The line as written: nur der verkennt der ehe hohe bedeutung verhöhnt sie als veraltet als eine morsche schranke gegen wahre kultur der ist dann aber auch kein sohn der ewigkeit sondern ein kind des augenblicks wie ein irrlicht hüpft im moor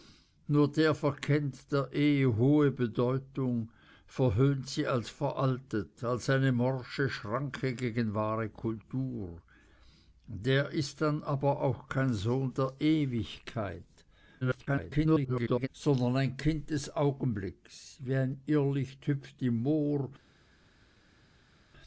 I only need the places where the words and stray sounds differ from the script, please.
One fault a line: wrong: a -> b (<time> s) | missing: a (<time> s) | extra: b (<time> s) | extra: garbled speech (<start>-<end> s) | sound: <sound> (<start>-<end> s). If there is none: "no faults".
extra: garbled speech (14.4-15.7 s)